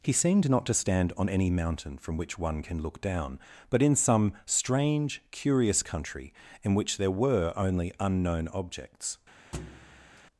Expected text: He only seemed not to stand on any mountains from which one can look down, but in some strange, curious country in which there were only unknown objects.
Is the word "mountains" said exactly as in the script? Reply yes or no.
no